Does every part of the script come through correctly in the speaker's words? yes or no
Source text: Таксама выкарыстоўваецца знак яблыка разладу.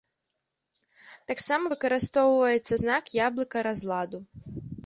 yes